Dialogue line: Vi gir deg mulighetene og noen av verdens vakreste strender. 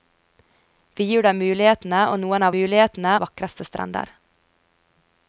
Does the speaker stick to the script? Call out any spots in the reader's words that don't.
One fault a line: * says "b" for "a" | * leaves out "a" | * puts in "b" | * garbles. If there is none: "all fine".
* says "mulighetene" for "verdens"